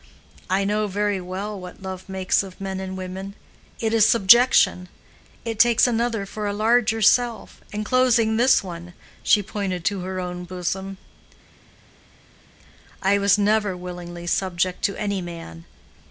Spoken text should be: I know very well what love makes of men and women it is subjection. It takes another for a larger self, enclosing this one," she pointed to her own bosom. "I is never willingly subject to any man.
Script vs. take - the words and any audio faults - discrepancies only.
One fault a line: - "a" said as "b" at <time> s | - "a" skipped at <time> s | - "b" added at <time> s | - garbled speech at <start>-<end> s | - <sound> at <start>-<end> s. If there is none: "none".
- "is" said as "was" at 13.2 s